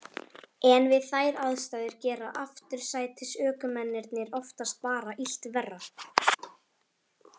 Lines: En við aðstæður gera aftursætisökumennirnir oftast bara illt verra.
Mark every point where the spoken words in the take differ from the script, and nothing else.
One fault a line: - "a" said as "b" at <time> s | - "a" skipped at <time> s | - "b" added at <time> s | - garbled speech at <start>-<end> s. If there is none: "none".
- "þær" added at 1.1 s